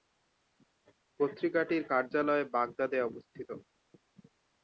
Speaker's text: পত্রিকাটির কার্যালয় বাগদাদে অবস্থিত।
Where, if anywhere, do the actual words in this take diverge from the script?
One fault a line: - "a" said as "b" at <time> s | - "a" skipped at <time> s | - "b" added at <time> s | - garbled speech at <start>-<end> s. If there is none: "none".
none